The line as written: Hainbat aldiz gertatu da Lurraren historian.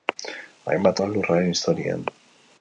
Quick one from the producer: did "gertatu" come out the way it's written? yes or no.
no